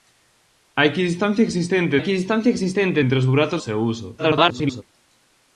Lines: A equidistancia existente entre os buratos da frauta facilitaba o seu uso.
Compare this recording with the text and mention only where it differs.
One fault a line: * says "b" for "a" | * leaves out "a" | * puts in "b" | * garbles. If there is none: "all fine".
* puts in "equidistancia existente"
* leaves out "da frauta facilitaba"
* garbles